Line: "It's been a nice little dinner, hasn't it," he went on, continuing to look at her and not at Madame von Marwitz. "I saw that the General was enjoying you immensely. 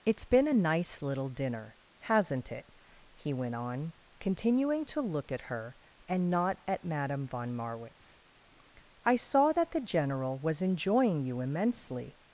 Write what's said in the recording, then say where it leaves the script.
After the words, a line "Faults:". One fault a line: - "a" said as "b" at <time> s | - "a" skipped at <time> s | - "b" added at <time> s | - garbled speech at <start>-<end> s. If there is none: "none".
"It's been a nice little dinner, hasn't it," he went on, continuing to look at her and not at Madame von Marwitz. "I saw that the General was enjoying you immensely.
Faults:
none